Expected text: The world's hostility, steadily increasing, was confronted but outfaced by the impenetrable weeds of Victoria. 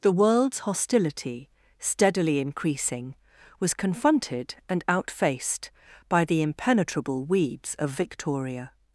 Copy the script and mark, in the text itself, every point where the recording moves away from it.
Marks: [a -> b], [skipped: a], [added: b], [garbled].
The world's hostility, steadily increasing, was confronted [but -> and] outfaced by the impenetrable weeds of Victoria.